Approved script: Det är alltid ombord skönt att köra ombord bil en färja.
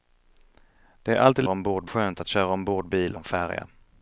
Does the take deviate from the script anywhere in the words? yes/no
no